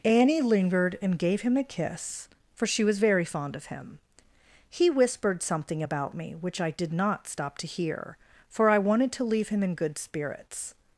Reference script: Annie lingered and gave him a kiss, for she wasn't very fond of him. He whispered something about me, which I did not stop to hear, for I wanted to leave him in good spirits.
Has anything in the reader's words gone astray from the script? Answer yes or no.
yes